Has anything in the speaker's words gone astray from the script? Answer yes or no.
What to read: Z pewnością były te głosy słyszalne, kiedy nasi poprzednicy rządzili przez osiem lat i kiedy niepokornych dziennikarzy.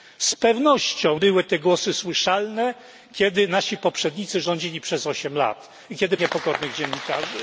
no